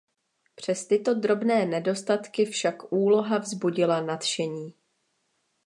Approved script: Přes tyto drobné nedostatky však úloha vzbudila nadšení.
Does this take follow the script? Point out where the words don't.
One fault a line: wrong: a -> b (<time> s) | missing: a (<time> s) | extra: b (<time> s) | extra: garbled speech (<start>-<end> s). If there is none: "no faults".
no faults